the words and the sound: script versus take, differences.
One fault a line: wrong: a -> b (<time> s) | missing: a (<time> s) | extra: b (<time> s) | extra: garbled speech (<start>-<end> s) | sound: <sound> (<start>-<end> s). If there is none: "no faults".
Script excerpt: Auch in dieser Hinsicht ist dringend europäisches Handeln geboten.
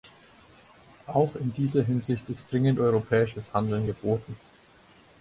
no faults